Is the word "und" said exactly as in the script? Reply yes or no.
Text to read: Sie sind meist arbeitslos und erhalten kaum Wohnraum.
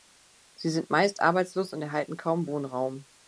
yes